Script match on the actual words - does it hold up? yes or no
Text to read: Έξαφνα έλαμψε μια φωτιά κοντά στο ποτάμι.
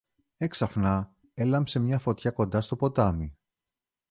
yes